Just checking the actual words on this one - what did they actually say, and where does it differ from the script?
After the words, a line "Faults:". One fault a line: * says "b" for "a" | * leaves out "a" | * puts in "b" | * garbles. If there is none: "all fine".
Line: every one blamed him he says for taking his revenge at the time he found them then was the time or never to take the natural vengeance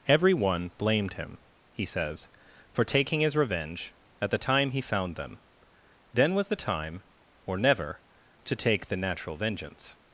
every one blamed him he says for taking his revenge at the time he found them then was the time or never to take the natural vengeance
Faults:
all fine